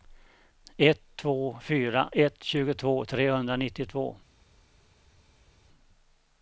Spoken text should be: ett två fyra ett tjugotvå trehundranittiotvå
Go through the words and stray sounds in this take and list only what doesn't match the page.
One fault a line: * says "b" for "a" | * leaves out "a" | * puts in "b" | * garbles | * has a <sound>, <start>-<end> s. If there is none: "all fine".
all fine